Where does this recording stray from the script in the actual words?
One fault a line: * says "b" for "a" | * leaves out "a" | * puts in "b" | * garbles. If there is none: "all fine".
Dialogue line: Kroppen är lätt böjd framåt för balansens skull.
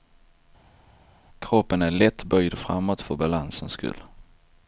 all fine